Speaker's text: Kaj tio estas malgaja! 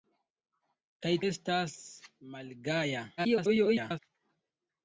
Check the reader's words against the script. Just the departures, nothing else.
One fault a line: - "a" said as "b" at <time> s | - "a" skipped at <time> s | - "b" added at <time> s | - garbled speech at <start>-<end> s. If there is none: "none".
- "tio" skipped at 1.1 s
- garbled speech at 3.2-4.0 s